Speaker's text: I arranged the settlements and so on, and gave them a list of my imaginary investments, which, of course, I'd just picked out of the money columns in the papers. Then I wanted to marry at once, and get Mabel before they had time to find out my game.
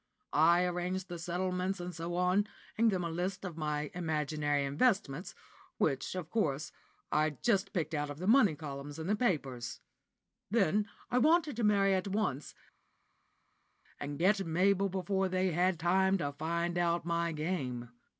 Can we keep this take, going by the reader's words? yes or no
no